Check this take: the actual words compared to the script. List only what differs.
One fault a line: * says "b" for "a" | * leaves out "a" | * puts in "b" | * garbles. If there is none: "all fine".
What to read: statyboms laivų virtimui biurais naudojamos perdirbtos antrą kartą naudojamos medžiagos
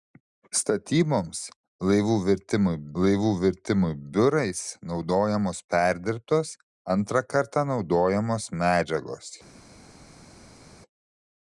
* puts in "laivų virtimui"